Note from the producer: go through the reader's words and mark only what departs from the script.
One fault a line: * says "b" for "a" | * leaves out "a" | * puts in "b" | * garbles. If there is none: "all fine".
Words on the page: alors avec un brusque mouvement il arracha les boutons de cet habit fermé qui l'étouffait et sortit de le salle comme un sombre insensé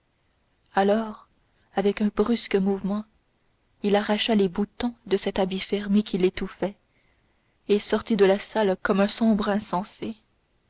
* says "la" for "le"